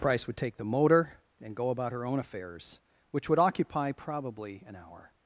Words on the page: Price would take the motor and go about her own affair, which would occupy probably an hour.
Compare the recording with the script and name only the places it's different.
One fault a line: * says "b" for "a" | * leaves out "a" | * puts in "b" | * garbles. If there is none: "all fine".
* says "affairs" for "affair"